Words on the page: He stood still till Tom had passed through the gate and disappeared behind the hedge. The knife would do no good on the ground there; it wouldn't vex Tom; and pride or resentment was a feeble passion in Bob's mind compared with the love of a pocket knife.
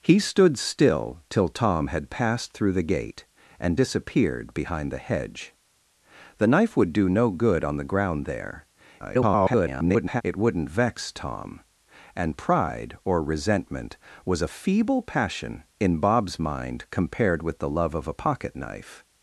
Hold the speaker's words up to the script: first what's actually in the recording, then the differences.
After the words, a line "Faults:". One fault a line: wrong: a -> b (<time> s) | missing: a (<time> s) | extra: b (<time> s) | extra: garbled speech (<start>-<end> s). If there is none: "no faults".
He stood still till Tom had passed through the gate and disappeared behind the hedge. The knife would do no good on the ground there; [garbled] it wouldn't vex Tom; and pride or resentment was a feeble passion in Bob's mind compared with the love of a pocket knife.
Faults:
extra: garbled speech (9.0-10.2 s)